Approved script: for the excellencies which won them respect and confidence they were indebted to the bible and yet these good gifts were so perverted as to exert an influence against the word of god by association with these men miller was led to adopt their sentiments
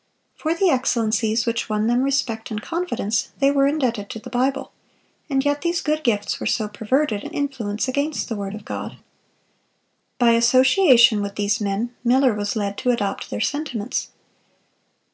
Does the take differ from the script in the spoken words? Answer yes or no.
yes